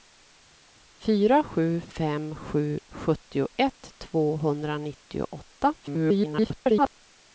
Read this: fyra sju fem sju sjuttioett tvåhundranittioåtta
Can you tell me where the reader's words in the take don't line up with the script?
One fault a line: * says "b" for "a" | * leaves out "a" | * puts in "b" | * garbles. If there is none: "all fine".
* garbles